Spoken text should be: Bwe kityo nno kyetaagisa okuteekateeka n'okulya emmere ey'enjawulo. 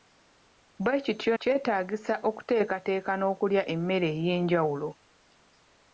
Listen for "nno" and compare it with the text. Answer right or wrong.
wrong